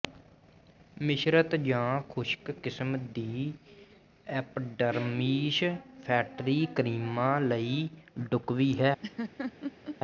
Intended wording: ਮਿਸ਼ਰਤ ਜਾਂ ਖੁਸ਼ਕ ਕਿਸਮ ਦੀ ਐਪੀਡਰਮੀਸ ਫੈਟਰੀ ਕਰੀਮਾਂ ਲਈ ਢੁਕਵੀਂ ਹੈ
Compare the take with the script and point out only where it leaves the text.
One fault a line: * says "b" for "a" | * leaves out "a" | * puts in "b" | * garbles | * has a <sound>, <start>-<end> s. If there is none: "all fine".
* has a laugh, 9.0-10.0 s